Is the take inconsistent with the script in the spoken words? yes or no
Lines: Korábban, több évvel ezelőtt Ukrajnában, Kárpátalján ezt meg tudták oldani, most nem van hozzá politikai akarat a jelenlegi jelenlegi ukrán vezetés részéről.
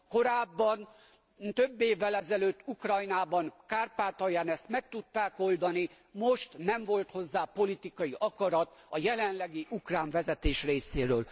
yes